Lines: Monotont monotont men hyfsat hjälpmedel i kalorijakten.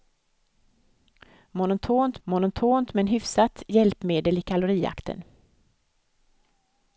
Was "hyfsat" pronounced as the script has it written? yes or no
yes